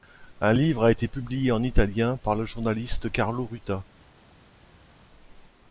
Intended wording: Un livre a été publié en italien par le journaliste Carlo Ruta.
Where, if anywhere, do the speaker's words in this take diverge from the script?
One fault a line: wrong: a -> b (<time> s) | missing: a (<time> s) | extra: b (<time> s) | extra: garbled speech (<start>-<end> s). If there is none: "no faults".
no faults